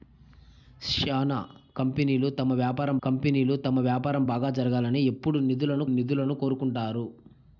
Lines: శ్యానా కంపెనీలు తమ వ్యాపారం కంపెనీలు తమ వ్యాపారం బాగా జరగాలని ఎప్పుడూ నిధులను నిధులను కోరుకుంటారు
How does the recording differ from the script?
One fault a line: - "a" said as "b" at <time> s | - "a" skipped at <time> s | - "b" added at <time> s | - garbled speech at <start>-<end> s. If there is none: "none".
none